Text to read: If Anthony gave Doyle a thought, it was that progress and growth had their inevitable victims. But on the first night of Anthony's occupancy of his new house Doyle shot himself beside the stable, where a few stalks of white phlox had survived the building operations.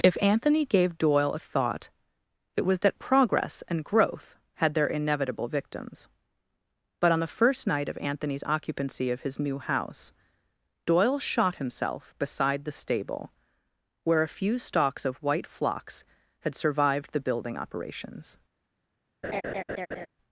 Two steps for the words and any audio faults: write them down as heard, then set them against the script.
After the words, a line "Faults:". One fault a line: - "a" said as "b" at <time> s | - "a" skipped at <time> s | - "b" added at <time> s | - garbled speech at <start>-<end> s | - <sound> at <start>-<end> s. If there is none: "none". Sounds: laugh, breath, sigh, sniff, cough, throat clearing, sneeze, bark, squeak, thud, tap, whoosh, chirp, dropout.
If Anthony gave Doyle a thought, it was that progress and growth had their inevitable victims. But on the first night of Anthony's occupancy of his new house Doyle shot himself beside the stable, where a few stalks of white phlox had survived the building operations.
Faults:
- laugh at 19.2-20.1 s